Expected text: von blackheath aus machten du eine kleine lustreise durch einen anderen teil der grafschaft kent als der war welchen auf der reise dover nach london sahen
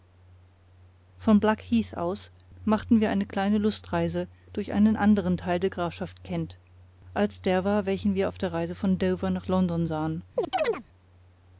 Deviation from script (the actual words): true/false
true